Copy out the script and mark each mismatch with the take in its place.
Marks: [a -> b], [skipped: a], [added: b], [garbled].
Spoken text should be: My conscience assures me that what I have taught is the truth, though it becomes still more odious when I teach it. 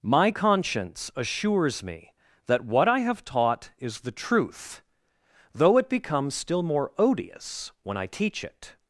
My conscience assures me that what I have taught is the truth, though it becomes still more odious when I teach it.